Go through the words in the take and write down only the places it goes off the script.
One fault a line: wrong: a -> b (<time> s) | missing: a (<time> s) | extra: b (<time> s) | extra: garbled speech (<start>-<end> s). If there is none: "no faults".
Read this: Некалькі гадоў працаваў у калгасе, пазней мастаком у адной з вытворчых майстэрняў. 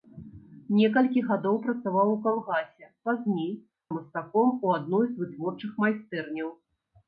no faults